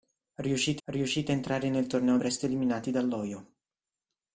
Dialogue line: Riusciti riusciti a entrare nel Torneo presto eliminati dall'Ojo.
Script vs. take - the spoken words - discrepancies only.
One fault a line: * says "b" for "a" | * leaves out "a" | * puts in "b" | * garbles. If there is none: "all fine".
all fine